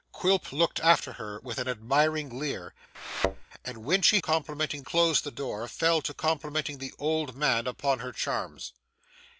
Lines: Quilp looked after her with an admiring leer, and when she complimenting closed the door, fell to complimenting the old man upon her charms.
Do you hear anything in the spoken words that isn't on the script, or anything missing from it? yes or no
no